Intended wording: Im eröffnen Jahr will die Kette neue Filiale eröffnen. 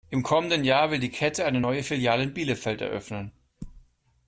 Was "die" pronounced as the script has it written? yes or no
yes